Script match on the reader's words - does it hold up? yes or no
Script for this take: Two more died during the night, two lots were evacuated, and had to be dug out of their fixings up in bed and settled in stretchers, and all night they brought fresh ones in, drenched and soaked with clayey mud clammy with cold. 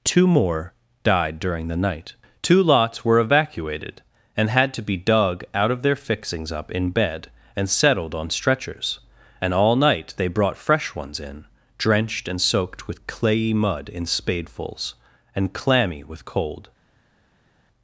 no